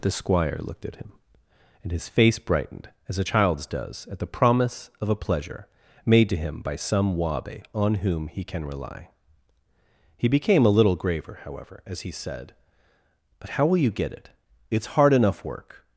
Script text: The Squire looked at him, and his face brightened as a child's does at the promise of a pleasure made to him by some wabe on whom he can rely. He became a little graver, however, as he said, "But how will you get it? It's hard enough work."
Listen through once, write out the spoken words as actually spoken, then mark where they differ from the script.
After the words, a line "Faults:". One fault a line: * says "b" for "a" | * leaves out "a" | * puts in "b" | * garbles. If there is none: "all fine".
The Squire looked at him, and his face brightened as a child's does at the promise of a pleasure made to him by some wabe on whom he can rely. He became a little graver, however, as he said, "But how will you get it? It's hard enough work."
Faults:
all fine